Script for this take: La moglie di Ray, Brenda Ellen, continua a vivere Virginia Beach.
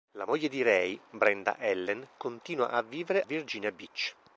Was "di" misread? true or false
false